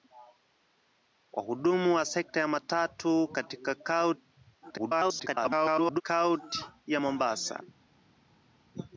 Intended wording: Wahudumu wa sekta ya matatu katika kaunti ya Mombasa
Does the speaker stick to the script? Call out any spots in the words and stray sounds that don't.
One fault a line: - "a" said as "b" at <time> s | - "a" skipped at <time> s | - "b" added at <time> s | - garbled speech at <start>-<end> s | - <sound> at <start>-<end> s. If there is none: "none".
- garbled speech at 4.6-6.0 s